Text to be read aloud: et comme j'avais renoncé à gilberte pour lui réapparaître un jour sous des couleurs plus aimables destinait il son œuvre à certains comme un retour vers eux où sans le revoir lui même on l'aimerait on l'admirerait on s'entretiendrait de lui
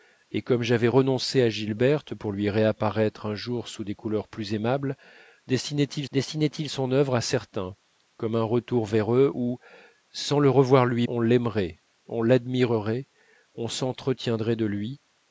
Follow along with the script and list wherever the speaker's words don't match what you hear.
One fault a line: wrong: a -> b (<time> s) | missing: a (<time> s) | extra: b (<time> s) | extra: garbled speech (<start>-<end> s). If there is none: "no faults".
extra: destinait il (6.1 s)
missing: même (11.1 s)